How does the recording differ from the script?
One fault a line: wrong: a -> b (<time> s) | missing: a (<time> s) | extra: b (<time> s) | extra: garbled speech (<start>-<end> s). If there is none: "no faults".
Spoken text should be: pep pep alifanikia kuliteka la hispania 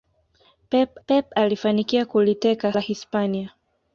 no faults